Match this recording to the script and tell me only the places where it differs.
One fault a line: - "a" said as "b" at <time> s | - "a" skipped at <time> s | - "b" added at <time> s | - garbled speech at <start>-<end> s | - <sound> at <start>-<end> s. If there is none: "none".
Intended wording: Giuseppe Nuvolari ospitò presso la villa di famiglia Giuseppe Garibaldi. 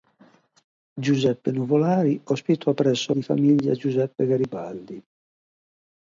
- "la villa" skipped at 3.1 s